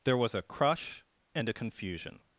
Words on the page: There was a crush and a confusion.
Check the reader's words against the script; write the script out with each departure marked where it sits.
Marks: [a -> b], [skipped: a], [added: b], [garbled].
There was a crush and a confusion.